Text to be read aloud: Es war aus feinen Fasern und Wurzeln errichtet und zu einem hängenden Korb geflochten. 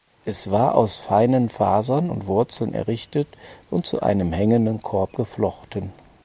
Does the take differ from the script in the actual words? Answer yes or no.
no